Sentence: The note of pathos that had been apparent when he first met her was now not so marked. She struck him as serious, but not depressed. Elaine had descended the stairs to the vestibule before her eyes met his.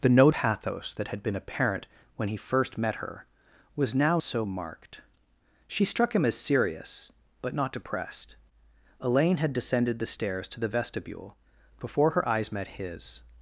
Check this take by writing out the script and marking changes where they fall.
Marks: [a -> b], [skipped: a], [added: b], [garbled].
The note [skipped: of] pathos that had been apparent when he first met her was now [skipped: not] so marked. She struck him as serious, but not depressed. Elaine had descended the stairs to the vestibule before her eyes met his.